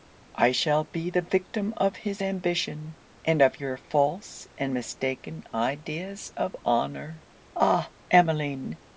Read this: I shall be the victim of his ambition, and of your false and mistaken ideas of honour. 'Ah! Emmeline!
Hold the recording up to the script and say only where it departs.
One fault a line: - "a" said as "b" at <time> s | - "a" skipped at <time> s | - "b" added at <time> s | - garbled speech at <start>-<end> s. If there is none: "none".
none